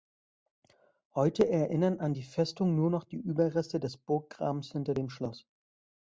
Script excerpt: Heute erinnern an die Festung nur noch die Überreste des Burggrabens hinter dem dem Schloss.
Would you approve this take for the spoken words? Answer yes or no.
no